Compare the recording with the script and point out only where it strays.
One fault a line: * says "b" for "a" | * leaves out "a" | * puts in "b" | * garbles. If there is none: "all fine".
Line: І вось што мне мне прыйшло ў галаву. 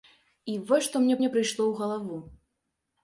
all fine